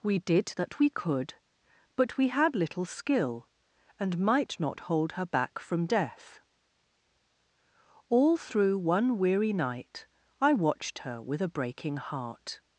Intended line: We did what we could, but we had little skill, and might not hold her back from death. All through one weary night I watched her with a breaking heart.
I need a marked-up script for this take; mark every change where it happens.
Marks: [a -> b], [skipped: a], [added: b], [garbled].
We did [what -> that] we could, but we had little skill, and might not hold her back from death. All through one weary night I watched her with a breaking heart.